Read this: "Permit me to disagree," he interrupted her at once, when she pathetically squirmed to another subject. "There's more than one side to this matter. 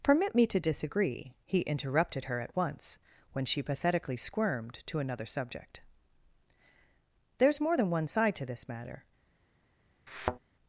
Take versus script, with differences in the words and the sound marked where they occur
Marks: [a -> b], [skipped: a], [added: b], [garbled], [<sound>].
"Permit me to disagree," he interrupted her at once, when she pathetically squirmed to another subject. "There's more than one side to this matter. [thud]